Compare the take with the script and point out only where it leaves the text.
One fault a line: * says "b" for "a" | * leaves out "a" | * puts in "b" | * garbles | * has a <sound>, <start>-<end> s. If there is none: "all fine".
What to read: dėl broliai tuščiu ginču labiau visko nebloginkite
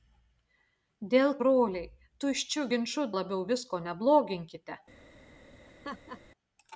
* has a laugh, 5.7-6.2 s